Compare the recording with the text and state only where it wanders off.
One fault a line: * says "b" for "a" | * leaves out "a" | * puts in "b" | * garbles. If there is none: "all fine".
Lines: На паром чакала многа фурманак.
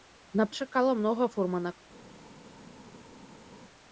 * leaves out "паром"